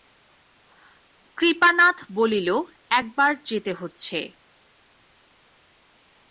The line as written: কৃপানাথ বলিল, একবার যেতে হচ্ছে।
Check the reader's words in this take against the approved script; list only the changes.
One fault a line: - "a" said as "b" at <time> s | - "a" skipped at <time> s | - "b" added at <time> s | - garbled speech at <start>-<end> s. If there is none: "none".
none